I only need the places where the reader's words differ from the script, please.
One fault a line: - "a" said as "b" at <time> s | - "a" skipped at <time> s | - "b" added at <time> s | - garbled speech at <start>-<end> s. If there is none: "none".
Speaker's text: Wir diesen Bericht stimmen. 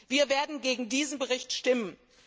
- "werden gegen" added at 0.3 s